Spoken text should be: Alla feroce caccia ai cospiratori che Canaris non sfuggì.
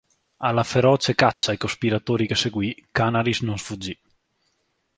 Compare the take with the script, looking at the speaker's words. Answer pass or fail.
fail